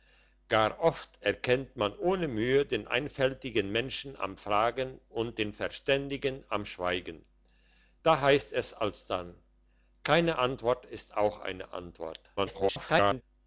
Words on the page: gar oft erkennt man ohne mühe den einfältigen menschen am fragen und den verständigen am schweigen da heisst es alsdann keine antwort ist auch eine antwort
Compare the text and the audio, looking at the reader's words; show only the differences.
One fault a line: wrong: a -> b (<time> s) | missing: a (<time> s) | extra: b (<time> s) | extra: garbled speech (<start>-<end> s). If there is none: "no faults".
extra: garbled speech (12.4-13.2 s)